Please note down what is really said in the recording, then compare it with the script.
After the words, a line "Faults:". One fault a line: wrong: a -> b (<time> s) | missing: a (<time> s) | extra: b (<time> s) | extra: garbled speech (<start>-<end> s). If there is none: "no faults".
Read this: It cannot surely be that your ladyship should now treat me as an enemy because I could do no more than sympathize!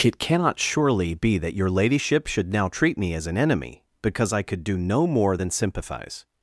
It cannot surely be that your ladyship should now treat me as an enemy because I could do no more than sympathize!
Faults:
no faults